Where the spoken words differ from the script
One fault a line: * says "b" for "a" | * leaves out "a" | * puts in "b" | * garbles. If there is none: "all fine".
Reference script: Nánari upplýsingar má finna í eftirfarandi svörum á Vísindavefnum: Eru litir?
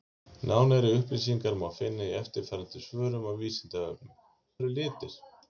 all fine